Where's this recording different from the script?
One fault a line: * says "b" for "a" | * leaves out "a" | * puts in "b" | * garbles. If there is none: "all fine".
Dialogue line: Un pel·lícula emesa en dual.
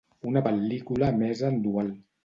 * says "Una" for "Un"